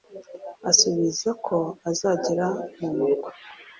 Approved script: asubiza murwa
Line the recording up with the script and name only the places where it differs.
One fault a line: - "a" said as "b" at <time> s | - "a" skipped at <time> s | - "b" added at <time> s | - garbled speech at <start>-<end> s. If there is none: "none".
- "ko azagera mu" added at 1.4 s